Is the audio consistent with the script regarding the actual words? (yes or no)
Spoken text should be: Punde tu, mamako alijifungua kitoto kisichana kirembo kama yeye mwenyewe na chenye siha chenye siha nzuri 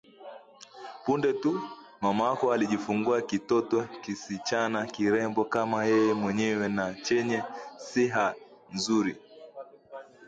no